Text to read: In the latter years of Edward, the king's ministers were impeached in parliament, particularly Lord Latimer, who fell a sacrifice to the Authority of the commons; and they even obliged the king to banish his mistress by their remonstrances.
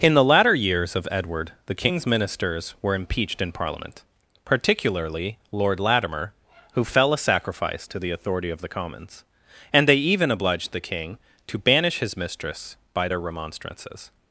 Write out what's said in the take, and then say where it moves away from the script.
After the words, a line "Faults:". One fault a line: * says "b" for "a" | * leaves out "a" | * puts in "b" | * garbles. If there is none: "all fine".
In the latter years of Edward, the king's ministers were impeached in parliament, particularly Lord Latimer, who fell a sacrifice to the Authority of the commons; and they even obliged the king to banish his mistress by their remonstrances.
Faults:
all fine